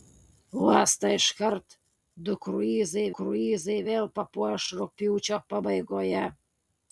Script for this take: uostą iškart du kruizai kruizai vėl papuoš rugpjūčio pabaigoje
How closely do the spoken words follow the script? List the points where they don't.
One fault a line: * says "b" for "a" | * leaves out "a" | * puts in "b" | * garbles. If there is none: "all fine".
all fine